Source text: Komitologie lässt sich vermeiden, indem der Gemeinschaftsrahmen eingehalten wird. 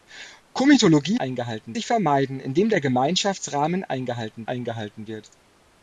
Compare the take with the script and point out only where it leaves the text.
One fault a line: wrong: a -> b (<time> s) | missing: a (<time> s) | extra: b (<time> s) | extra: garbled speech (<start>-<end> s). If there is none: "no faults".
wrong: lässt -> eingehalten (1.1 s)
extra: eingehalten (4.4 s)